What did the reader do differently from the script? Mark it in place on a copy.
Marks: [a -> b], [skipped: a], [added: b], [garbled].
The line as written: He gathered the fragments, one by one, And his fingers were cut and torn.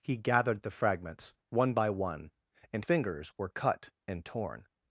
He gathered the fragments, one by one, And [skipped: his] fingers were cut and torn.